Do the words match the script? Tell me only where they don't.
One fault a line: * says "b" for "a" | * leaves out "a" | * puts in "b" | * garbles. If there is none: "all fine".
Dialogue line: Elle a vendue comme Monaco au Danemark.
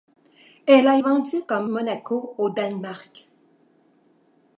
all fine